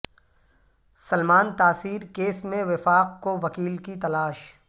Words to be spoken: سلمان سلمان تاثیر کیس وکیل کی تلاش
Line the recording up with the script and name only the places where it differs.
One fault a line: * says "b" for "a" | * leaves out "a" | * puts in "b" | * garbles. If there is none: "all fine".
* leaves out "سلمان"
* puts in "میں وفاق کو"